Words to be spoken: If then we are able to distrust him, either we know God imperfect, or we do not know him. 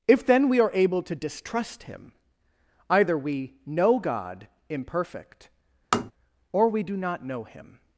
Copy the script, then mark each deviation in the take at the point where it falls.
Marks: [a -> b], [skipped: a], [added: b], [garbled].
If then we are able to distrust him, either we know God imperfect, or we do not know him.